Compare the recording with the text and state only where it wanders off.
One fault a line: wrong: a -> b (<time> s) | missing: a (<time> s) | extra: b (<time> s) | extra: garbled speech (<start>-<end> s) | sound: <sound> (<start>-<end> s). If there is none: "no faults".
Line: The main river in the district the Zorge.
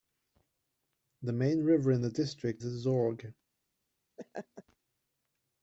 sound: laugh (4.2-4.6 s)